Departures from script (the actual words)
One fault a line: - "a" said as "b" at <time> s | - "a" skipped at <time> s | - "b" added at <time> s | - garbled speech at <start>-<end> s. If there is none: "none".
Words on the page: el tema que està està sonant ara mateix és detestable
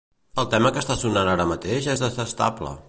- "està" skipped at 1.0 s